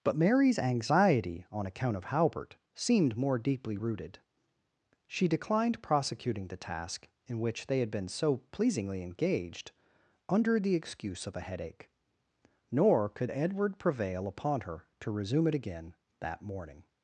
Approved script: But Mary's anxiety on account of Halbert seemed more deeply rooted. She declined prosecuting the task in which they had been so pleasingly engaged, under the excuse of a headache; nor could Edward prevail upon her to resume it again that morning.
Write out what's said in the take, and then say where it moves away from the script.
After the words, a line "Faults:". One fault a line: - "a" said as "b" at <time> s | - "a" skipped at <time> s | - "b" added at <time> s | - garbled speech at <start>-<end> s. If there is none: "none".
But Mary's anxiety on account of Halbert seemed more deeply rooted. She declined prosecuting the task in which they had been so pleasingly engaged, under the excuse of a headache; nor could Edward prevail upon her to resume it again that morning.
Faults:
none